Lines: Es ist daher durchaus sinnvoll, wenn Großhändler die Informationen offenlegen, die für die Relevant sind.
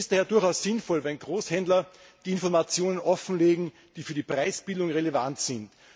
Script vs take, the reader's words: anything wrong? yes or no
yes